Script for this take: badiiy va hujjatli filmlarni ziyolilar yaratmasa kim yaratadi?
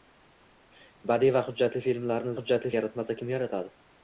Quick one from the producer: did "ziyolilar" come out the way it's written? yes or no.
no